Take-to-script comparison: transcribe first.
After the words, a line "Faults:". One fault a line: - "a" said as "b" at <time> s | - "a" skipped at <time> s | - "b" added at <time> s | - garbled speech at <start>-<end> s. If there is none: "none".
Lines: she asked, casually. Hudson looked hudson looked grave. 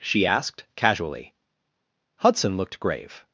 she asked, casually. Hudson looked grave.
Faults:
- "hudson looked" skipped at 2.8 s